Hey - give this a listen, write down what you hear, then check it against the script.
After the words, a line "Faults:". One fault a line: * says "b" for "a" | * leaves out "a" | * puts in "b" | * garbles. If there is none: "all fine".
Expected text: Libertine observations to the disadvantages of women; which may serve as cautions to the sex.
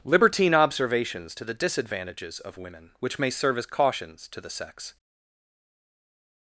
Libertine observations to the disadvantages of women; which may serve as cautions to the sex.
Faults:
all fine